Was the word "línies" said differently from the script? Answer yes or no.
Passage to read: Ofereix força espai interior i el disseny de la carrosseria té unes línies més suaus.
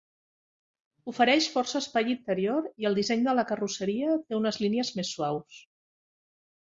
no